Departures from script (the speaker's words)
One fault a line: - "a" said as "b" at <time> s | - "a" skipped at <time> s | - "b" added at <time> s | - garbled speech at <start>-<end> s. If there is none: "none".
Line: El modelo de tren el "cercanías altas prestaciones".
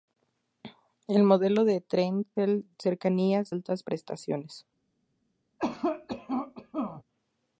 none